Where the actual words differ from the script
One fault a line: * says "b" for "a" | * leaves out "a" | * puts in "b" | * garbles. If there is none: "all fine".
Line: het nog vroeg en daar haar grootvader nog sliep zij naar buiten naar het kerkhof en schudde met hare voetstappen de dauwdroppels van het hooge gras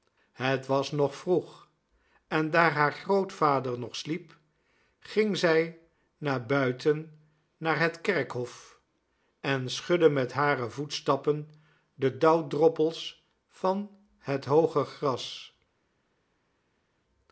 * puts in "was"
* puts in "ging"